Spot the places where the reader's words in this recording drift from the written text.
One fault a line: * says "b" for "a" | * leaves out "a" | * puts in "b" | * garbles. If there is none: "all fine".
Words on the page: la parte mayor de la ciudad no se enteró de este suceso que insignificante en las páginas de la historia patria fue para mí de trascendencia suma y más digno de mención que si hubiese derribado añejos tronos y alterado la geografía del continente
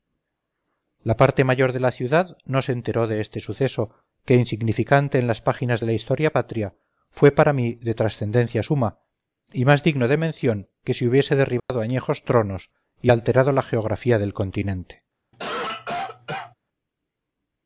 all fine